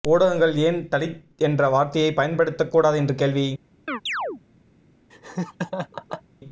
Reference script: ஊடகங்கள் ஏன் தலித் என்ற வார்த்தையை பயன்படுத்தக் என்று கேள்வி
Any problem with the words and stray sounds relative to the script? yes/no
yes